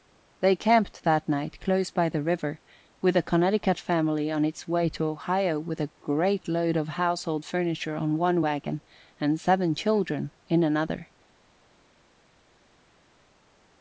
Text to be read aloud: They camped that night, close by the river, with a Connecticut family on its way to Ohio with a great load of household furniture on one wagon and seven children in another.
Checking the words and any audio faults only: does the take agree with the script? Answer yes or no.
yes